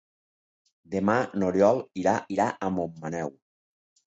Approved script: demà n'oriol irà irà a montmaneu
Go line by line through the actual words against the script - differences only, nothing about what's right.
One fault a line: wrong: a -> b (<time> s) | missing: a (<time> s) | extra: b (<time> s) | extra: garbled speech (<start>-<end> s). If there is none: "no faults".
no faults